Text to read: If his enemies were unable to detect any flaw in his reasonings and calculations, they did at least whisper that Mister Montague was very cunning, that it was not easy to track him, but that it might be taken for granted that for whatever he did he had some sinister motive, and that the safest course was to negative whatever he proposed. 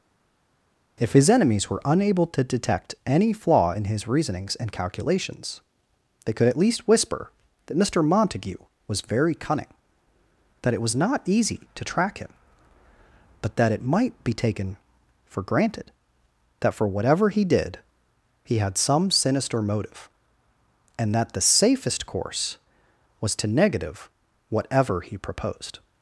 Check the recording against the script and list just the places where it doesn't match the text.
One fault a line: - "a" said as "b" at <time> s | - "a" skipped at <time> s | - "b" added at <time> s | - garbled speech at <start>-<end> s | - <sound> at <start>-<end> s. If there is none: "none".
- "did" said as "could" at 6.3 s